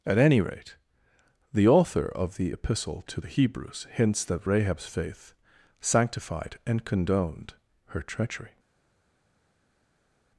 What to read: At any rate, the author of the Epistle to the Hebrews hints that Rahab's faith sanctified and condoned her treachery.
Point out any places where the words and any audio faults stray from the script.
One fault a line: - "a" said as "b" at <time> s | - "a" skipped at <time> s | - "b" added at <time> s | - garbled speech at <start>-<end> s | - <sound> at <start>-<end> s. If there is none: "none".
none